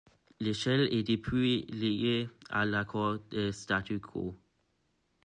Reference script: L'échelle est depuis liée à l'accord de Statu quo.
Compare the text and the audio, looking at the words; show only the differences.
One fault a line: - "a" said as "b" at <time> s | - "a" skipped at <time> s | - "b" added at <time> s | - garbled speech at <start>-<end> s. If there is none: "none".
none